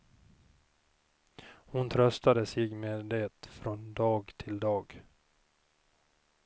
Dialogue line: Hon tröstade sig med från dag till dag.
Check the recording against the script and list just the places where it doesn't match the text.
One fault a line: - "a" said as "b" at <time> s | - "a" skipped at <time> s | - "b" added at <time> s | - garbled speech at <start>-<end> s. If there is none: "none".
- "det" added at 3.0 s